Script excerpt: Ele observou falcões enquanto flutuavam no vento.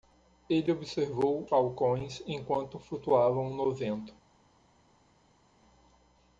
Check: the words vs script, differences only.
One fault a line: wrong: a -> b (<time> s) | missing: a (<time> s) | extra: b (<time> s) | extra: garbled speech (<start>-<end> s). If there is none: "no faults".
no faults